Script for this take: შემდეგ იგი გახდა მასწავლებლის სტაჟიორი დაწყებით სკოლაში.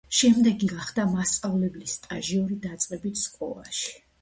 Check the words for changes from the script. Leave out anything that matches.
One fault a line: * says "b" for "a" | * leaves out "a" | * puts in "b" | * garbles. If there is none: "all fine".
* leaves out "იგი"